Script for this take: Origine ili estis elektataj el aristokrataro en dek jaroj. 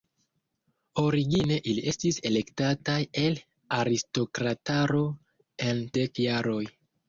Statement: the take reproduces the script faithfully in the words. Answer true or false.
true